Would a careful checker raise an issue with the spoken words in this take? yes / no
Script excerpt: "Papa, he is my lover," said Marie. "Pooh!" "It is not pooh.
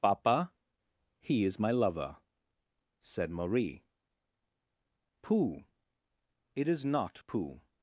no